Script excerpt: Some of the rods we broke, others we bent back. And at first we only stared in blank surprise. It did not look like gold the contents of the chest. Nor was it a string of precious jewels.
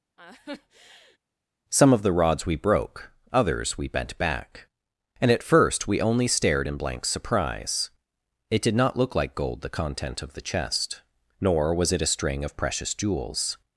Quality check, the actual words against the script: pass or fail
fail